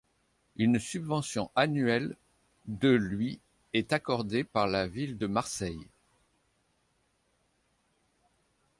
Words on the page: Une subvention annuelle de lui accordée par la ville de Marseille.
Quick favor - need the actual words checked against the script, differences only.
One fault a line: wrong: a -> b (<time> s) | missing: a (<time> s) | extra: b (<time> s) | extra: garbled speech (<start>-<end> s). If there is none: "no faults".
extra: est (3.7 s)